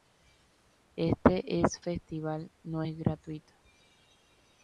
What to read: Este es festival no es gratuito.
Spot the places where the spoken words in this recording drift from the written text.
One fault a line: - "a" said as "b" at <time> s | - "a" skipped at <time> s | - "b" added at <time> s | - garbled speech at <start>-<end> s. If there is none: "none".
none